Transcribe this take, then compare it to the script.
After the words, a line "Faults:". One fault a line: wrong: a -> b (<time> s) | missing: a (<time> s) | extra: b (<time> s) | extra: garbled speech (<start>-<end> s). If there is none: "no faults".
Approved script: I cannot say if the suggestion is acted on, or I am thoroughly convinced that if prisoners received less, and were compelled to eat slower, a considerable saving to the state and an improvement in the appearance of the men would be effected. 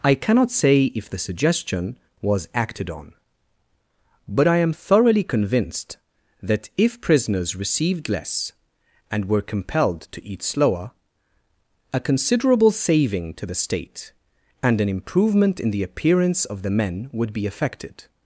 I cannot say if the suggestion was acted on, but I am thoroughly convinced that if prisoners received less, and were compelled to eat slower, a considerable saving to the state and an improvement in the appearance of the men would be effected.
Faults:
wrong: is -> was (2.2 s)
wrong: or -> but (4.3 s)